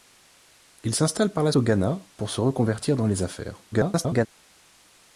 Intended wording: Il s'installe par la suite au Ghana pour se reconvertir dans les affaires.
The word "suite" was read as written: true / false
false